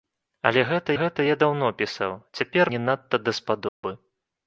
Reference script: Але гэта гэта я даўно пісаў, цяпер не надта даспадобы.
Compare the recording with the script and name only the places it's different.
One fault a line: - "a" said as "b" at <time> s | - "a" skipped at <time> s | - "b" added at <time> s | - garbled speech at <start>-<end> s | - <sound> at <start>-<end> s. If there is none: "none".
- dropout at 3.7-3.8 s